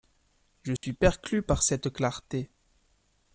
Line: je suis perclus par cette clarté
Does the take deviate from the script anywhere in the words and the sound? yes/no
yes